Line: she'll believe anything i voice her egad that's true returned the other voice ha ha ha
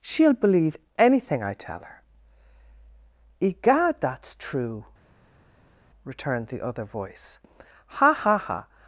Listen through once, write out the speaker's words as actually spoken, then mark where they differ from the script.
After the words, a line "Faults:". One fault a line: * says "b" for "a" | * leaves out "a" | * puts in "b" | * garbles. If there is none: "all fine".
she'll believe anything i tell her egad that's true returned the other voice ha ha ha
Faults:
* says "tell" for "voice"